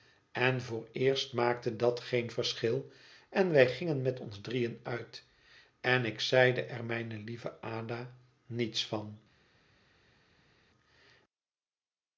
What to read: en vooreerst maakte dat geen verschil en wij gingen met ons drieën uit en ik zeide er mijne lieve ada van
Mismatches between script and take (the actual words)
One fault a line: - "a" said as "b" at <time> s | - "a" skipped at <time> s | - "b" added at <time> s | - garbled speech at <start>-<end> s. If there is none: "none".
- "niets" added at 8.4 s